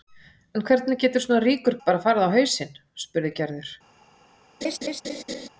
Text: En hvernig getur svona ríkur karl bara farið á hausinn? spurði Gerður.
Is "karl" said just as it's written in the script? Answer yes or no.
no